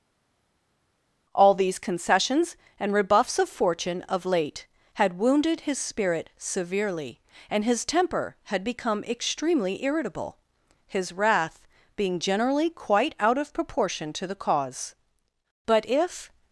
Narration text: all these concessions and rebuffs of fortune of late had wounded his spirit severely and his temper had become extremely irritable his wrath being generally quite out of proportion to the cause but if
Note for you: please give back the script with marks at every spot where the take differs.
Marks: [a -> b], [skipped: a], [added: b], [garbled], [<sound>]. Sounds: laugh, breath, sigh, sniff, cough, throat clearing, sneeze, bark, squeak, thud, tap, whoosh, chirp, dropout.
all these concessions and rebuffs of fortune of late had wounded his spirit severely and his temper had become extremely irritable his wrath being generally quite out of proportion to the cause but if